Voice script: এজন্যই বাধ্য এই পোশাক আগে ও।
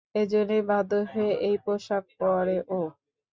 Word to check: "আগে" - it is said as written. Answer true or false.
false